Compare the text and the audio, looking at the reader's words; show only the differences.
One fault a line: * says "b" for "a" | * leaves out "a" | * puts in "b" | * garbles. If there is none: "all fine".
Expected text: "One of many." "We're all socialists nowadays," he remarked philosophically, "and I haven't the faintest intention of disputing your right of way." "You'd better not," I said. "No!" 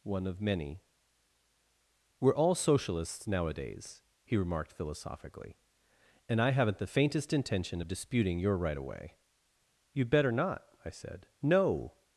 all fine